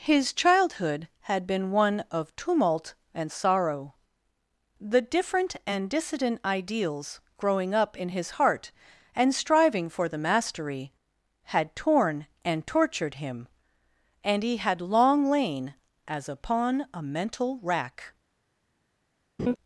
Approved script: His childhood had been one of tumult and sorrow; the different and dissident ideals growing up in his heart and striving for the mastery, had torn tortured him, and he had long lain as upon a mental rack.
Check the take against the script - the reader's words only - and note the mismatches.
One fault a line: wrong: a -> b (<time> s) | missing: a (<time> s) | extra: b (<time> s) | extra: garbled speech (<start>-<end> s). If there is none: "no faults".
extra: and (12.5 s)